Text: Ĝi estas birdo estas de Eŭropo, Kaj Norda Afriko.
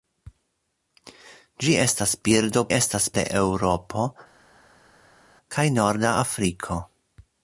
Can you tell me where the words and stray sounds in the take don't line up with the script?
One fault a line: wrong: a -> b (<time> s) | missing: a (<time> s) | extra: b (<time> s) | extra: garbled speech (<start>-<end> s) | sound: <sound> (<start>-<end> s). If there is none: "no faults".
no faults